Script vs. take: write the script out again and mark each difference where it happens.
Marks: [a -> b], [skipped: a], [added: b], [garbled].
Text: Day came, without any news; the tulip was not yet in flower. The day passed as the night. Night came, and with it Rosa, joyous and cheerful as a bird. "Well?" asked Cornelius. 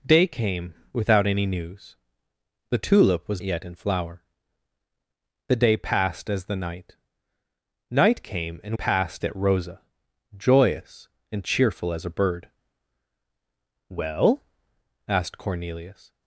Day came, without any news; the tulip was [skipped: not] yet in flower. The day passed as the night. Night came, and [with -> passed] it Rosa, joyous and cheerful as a bird. "Well?" asked Cornelius.